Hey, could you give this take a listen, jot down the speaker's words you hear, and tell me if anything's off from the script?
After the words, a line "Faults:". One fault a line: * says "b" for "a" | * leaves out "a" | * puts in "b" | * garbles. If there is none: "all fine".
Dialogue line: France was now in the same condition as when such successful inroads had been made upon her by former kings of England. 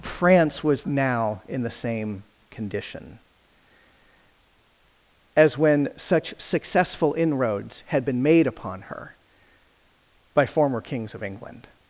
France was now in the same condition as when such successful inroads had been made upon her by former kings of England.
Faults:
all fine